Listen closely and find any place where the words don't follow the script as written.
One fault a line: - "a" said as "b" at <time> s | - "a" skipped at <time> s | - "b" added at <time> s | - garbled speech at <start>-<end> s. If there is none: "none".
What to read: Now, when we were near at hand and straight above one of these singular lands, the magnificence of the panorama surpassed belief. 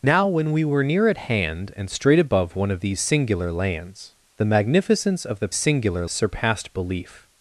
- "panorama" said as "singular" at 5.5 s